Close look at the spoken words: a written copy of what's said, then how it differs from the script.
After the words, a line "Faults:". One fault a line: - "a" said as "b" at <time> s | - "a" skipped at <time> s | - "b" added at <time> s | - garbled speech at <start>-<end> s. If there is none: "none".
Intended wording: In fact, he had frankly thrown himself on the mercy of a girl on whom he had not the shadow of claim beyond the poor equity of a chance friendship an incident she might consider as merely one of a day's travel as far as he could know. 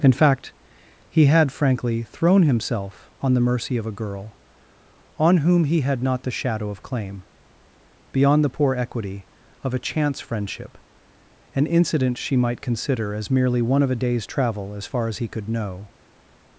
In fact, he had frankly thrown himself on the mercy of a girl on whom he had not the shadow of claim beyond the poor equity of a chance friendship an incident she might consider as merely one of a day's travel as far as he could know.
Faults:
none